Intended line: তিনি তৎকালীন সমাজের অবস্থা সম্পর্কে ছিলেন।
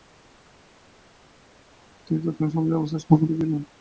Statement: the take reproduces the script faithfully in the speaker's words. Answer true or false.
true